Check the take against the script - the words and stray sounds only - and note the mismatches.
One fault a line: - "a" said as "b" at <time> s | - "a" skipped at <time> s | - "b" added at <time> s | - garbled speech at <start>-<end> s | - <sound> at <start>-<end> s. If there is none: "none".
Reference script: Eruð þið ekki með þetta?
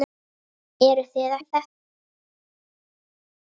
- "ekki með" skipped at 1.4 s